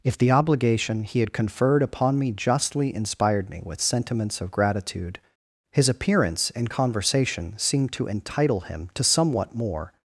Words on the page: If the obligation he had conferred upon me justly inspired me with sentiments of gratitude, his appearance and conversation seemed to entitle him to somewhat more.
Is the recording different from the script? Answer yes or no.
no